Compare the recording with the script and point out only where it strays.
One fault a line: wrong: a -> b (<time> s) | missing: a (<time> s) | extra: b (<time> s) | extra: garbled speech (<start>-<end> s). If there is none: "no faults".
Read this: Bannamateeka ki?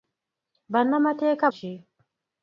no faults